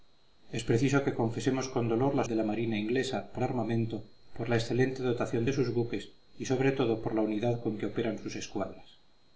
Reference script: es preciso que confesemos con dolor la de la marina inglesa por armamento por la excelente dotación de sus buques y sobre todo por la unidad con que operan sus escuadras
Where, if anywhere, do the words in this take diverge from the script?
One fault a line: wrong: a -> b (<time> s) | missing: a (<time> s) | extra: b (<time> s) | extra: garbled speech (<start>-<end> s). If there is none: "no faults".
no faults